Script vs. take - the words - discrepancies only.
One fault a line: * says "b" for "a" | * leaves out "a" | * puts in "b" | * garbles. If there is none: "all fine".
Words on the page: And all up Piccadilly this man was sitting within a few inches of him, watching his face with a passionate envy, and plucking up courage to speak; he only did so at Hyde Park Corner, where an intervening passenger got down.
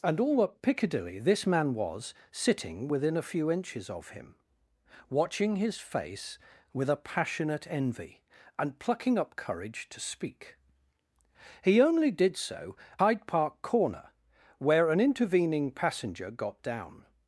* leaves out "at"